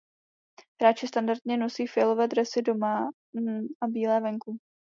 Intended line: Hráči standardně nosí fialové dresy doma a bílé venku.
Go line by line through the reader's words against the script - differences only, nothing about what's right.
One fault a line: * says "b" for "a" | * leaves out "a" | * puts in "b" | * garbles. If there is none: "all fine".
all fine